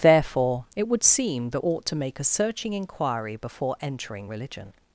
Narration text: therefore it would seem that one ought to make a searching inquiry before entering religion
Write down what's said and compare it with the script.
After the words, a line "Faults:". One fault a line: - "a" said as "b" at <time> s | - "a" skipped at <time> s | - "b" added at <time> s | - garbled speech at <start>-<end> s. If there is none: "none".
therefore it would seem that ought to make a searching inquiry before entering religion
Faults:
- "one" skipped at 1.6 s